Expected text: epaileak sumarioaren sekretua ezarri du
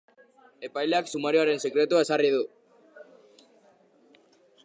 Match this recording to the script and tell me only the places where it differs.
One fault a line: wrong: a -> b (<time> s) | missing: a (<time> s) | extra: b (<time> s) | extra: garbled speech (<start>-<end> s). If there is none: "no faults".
no faults